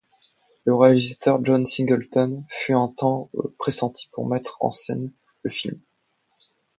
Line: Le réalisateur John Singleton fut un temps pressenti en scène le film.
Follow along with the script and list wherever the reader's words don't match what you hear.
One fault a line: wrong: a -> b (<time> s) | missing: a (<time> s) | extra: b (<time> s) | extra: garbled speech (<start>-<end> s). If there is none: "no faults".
extra: pour mettre (4.1 s)